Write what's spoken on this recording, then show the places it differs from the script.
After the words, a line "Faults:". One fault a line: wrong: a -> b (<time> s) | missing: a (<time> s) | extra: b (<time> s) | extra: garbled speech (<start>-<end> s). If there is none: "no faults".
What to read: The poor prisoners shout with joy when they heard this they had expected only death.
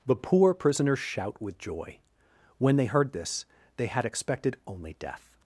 The poor prisoners shout with joy when they heard this they had expected only death.
Faults:
no faults